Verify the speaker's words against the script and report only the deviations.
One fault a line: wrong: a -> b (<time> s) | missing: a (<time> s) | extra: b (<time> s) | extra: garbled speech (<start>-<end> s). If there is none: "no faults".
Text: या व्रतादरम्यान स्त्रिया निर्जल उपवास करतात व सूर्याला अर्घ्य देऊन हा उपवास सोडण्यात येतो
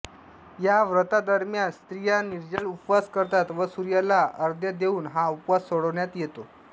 no faults